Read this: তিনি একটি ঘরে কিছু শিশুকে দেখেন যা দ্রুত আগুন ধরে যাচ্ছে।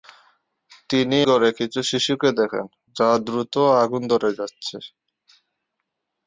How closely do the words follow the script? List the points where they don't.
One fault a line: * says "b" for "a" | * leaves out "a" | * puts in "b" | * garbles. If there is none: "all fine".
* leaves out "একটি"